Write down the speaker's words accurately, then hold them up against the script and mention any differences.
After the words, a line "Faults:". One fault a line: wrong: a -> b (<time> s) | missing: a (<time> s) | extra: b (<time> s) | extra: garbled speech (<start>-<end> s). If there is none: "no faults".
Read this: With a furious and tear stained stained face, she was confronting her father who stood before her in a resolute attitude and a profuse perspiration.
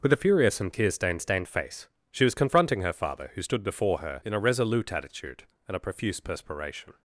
With a furious and tear stained stained face, she was confronting her father who stood before her in a resolute attitude and a profuse perspiration.
Faults:
no faults